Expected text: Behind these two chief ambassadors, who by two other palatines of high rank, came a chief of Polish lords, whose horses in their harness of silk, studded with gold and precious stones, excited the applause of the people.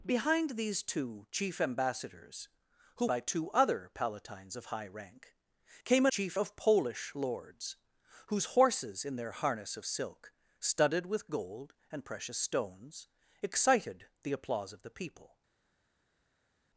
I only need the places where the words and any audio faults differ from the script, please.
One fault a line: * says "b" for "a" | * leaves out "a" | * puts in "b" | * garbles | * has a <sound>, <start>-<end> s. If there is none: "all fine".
all fine